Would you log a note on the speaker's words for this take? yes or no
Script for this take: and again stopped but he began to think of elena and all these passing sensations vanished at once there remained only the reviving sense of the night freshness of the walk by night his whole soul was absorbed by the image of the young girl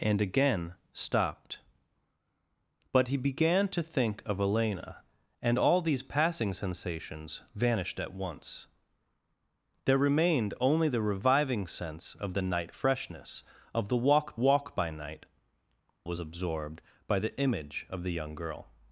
yes